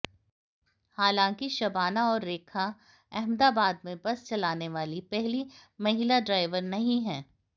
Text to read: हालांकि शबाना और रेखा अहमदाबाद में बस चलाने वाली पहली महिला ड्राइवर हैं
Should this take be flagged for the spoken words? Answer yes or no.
yes